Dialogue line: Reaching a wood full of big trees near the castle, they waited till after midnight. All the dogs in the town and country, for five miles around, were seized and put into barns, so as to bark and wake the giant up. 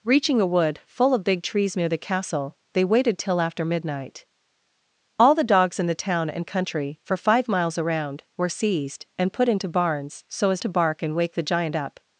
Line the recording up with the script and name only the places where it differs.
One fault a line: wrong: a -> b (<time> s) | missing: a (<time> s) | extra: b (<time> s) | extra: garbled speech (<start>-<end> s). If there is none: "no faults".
no faults